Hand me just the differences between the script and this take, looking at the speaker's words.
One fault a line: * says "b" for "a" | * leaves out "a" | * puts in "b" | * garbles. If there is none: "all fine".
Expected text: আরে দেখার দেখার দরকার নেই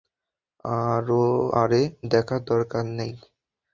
* leaves out "দেখার"